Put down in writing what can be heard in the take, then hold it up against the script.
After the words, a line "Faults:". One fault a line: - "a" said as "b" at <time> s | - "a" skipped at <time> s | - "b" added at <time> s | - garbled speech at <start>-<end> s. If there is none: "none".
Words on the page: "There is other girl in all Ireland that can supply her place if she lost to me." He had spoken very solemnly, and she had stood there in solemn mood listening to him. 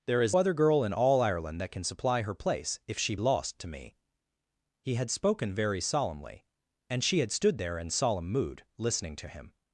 "There is other girl in all Ireland that can supply her place if she lost to me." He had spoken very solemnly, and she had stood there in solemn mood listening to him.
Faults:
none